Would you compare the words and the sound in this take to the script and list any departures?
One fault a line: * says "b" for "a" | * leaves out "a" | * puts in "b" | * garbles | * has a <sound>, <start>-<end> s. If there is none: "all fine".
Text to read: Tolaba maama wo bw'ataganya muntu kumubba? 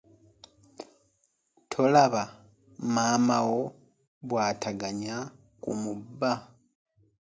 * leaves out "muntu"